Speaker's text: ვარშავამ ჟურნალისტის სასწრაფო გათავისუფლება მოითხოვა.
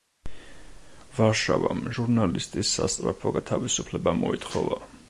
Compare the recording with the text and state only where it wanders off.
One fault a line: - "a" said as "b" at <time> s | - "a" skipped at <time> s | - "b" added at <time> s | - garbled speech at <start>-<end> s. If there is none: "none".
none